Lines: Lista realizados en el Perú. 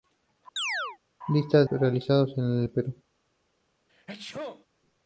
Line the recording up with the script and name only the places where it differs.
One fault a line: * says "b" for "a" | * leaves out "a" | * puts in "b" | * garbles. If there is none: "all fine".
all fine